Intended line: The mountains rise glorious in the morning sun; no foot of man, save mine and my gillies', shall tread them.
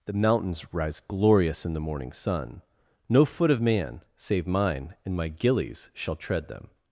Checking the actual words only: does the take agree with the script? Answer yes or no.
yes